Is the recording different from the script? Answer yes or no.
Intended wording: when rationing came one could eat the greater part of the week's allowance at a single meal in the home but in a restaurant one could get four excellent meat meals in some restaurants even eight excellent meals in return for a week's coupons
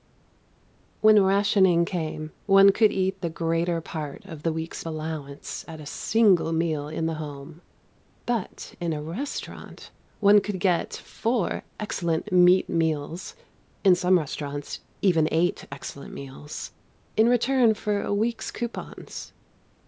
no